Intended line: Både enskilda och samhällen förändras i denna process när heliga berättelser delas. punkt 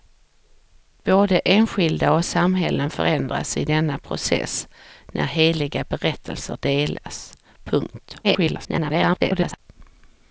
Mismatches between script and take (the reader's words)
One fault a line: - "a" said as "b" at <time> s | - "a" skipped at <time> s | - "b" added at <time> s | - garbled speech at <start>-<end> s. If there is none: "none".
- garbled speech at 8.2-9.6 s